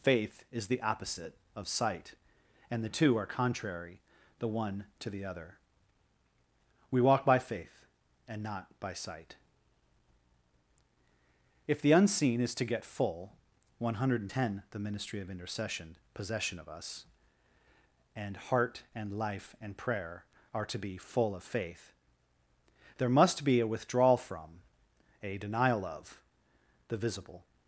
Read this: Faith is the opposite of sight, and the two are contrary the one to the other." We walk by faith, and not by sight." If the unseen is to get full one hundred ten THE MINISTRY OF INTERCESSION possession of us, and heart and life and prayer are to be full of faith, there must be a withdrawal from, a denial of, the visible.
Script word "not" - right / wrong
right